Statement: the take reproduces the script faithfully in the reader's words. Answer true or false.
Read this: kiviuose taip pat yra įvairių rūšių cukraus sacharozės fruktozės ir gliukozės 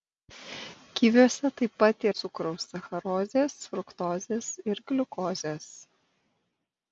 false